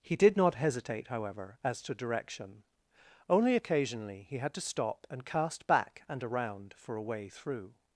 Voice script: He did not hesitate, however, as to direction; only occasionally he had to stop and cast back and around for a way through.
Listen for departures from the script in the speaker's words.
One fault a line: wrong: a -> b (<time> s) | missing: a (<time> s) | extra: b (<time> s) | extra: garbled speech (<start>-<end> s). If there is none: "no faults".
no faults